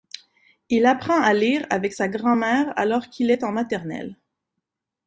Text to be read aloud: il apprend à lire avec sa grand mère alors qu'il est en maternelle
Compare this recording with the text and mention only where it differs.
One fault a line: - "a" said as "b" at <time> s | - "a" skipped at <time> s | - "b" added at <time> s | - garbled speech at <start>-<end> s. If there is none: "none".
none